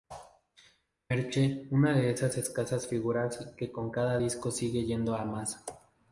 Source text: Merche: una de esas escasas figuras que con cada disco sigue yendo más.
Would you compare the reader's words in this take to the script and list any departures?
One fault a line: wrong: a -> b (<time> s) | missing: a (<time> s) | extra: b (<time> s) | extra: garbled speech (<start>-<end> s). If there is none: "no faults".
extra: a (5.1 s)